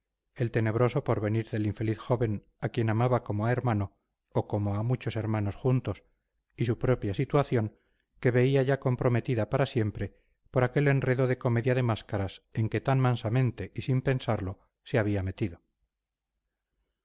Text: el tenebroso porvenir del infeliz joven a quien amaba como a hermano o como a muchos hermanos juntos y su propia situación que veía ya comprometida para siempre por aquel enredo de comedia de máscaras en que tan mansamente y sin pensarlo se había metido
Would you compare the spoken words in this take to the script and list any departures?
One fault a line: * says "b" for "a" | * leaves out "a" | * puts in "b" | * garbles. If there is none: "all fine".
all fine